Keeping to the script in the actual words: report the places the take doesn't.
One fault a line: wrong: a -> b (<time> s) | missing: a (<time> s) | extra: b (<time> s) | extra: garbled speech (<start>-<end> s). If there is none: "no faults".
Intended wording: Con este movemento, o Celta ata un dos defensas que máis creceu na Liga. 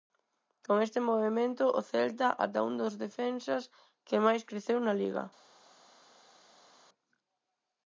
no faults